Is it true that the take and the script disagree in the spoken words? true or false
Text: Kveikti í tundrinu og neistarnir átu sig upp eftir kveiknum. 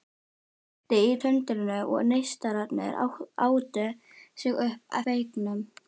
true